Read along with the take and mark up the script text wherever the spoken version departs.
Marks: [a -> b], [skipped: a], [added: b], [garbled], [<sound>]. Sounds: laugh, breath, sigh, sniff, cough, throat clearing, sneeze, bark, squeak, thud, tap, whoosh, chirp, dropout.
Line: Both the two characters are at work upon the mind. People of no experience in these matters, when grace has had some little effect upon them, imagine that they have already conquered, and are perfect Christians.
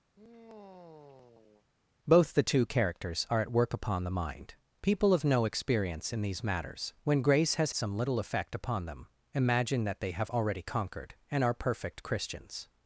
[sigh] Both the two characters are at work upon the mind. People of no experience in these matters, when grace has [skipped: had] some little effect upon them, imagine that they have already conquered, and are perfect Christians.